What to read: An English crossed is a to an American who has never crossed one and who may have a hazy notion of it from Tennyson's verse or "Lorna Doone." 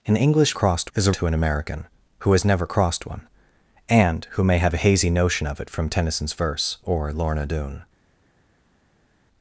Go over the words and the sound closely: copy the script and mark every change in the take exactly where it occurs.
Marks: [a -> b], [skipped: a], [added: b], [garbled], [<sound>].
An English crossed is a to an American who has never crossed one and who may have a hazy notion of it from Tennyson's verse or "Lorna Doone."